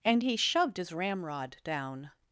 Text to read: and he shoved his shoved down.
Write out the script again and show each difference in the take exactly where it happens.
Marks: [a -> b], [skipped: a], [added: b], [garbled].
and he shoved his [shoved -> ramrod] down.